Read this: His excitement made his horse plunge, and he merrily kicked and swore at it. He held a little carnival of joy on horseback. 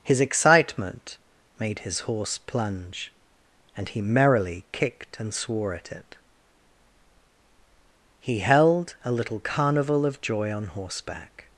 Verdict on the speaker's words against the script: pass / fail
pass